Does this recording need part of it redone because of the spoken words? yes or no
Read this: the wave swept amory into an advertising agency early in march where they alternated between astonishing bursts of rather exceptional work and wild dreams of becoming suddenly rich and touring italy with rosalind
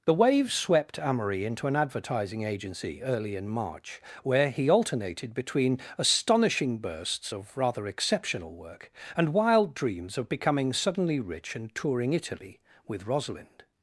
yes